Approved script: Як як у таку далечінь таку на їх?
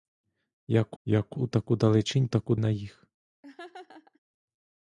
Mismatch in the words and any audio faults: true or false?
true